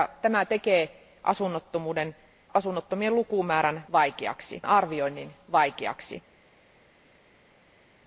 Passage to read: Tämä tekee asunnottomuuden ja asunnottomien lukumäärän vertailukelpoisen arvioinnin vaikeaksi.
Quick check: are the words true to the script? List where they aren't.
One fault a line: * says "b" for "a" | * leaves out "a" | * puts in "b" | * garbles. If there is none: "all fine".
* leaves out "ja"
* says "vaikeaksi" for "vertailukelpoisen"